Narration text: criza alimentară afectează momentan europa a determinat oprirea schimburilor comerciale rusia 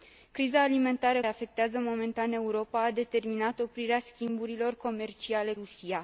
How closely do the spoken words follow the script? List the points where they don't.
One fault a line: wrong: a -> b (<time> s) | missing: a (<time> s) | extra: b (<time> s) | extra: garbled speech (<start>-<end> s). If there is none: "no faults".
no faults